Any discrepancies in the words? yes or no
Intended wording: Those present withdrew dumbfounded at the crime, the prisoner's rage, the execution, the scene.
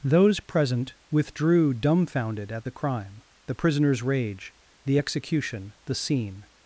no